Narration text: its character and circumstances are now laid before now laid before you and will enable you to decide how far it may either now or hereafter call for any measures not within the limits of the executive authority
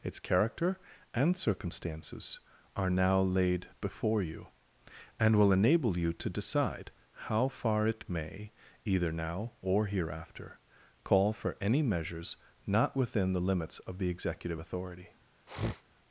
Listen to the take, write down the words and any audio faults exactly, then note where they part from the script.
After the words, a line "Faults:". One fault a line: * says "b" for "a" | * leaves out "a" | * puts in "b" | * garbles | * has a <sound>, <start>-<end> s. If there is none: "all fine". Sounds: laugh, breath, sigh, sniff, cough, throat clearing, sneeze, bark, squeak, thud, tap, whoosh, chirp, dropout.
its character and circumstances are now laid before you and will enable you to decide how far it may either now or hereafter call for any measures not within the limits of the executive authority
Faults:
* leaves out "now laid before"
* has a sniff, 15.5-15.8 s